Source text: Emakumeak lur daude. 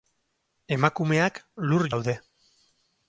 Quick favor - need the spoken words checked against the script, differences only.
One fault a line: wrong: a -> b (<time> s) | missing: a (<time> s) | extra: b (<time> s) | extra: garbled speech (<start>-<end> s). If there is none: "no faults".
no faults